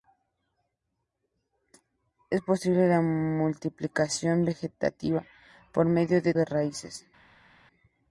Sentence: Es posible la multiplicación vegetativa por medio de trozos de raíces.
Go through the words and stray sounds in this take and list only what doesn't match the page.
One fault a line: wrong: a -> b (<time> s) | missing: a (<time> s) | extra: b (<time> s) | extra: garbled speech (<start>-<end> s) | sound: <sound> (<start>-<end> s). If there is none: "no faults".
missing: trozos (6.3 s)